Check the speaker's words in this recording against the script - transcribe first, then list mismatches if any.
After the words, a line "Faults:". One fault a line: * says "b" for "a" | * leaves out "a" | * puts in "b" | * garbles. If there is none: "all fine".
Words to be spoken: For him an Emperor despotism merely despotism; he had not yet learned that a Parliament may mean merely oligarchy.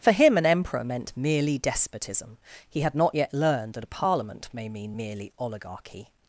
For him an Emperor meant merely despotism; he had not yet learned that a Parliament may mean merely oligarchy.
Faults:
* says "meant" for "despotism"